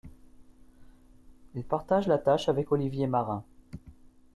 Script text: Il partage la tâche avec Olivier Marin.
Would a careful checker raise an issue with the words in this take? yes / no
no